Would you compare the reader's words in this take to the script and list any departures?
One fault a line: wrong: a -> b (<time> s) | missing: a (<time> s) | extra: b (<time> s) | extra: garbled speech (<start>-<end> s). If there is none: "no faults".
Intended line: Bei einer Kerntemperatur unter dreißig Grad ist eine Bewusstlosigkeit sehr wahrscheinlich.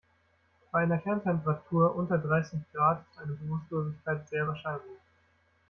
no faults